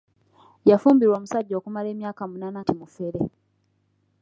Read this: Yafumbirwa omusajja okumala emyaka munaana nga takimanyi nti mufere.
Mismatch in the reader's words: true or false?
true